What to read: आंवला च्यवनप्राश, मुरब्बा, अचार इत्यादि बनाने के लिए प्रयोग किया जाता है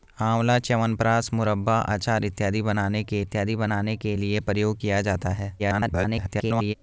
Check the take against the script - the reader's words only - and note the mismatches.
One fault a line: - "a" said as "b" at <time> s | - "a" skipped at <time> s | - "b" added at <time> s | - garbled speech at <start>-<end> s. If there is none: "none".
- "इत्यादि बनाने के" added at 3.2 s
- garbled speech at 5.6-6.7 s